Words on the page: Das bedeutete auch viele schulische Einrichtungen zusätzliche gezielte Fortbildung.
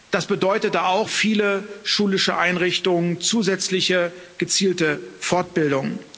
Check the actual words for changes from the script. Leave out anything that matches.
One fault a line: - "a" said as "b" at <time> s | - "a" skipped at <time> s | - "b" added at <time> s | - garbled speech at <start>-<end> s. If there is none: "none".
none